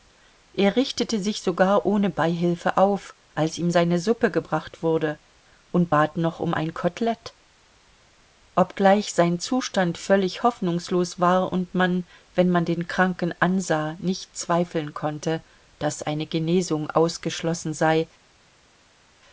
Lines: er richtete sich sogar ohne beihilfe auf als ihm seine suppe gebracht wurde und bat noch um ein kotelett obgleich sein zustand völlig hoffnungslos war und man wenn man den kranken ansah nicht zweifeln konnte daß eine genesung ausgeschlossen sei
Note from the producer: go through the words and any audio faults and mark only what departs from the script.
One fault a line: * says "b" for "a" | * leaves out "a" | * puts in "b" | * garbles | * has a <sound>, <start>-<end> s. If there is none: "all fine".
all fine